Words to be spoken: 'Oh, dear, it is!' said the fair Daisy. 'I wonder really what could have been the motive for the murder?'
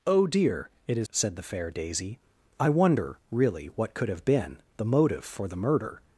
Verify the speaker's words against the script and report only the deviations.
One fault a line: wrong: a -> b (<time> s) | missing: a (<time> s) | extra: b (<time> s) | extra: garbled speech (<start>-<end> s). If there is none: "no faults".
no faults